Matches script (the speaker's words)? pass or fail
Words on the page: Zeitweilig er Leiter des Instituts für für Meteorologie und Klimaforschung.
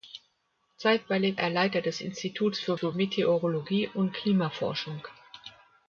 pass